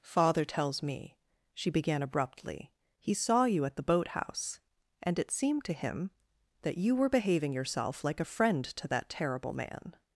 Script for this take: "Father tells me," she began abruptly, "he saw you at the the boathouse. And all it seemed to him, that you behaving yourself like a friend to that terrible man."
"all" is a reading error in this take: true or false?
true